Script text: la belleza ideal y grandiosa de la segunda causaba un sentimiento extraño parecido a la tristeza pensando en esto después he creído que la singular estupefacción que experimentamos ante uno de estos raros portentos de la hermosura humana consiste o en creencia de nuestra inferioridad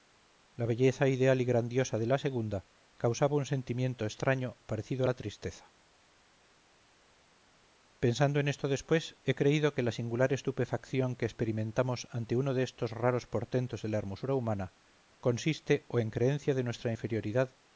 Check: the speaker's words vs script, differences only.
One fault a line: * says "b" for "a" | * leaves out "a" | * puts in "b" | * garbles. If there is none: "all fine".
all fine